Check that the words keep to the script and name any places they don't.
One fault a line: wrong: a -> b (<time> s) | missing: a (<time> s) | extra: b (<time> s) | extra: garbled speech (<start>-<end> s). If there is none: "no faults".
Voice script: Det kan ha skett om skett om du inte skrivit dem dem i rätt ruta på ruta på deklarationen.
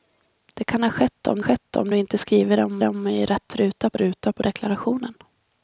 no faults